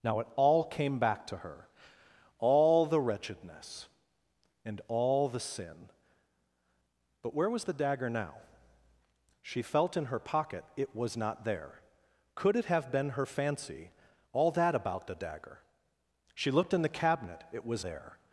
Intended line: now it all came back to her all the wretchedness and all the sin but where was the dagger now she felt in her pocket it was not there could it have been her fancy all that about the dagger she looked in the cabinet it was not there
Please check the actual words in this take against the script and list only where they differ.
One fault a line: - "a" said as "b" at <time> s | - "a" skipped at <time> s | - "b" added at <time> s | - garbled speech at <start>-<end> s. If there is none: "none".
- "not" skipped at 17.8 s